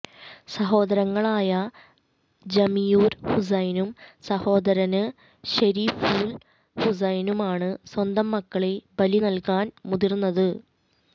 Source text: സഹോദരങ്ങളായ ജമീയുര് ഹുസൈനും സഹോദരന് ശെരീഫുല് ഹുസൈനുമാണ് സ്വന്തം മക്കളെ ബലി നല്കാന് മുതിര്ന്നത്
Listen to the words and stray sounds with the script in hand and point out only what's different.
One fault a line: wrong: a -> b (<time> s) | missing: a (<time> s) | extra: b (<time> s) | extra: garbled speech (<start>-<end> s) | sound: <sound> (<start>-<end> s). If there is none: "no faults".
no faults